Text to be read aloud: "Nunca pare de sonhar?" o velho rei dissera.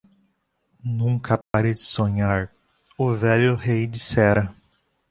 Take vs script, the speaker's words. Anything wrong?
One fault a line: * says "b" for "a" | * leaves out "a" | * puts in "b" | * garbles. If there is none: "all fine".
all fine